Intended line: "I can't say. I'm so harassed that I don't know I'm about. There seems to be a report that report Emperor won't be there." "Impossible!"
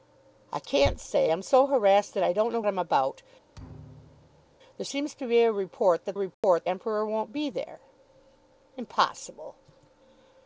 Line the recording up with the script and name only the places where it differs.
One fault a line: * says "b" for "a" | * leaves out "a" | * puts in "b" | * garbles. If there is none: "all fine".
all fine